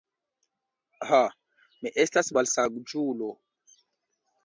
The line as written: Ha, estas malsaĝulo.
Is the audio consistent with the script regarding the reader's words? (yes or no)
no